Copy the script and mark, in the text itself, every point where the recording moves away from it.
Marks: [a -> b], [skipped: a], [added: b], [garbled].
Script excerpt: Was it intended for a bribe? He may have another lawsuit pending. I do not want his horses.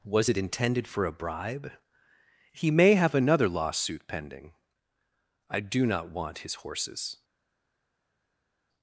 Was it intended for a bribe? He may have another lawsuit pending. I do not want his horses.